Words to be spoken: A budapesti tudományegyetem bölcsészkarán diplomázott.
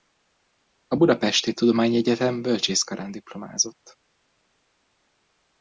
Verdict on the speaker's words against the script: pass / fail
pass